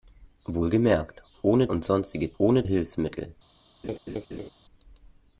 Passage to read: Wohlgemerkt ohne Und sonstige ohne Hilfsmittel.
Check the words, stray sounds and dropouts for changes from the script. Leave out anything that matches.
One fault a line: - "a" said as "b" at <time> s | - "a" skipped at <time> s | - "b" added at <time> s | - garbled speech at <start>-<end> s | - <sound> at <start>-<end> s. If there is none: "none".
- laugh at 3.8-4.5 s